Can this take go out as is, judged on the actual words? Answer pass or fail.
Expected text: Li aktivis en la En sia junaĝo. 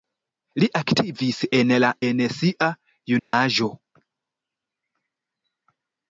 pass